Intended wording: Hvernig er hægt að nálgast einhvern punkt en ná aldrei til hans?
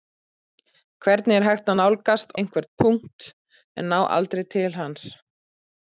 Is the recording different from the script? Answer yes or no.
no